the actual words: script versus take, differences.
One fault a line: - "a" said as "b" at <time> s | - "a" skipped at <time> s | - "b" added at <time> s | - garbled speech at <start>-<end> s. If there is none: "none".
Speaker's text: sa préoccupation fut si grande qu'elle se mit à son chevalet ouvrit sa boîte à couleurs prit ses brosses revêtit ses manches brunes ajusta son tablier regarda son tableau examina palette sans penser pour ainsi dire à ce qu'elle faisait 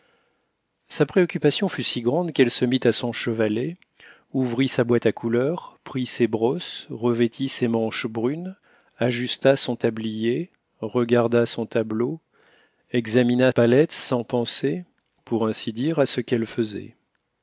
none